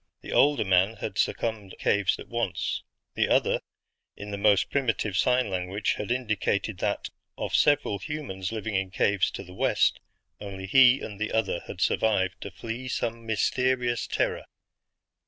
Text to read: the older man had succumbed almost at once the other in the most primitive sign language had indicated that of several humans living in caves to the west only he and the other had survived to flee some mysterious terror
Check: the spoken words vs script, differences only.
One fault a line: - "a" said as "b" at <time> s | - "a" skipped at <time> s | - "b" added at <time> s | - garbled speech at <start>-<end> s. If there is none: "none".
- "almost" said as "caves" at 1.8 s